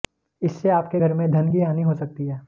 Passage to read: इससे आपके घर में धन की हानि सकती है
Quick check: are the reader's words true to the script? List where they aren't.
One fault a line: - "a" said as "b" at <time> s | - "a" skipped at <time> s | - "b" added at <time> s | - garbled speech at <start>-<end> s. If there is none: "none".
- "हो" added at 1.8 s